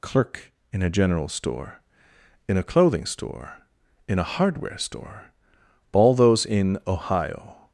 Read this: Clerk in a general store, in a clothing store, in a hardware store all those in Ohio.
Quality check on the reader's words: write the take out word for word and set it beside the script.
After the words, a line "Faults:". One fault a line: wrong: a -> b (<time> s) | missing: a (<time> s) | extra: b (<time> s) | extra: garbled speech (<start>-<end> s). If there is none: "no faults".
Clerk in a general store, in a clothing store, in a hardware store all those in Ohio.
Faults:
no faults